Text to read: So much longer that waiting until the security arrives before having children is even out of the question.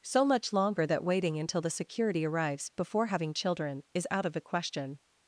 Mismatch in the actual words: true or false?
true